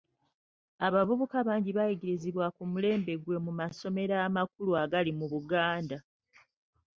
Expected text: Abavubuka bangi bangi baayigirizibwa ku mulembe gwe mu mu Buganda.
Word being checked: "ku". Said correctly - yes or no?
yes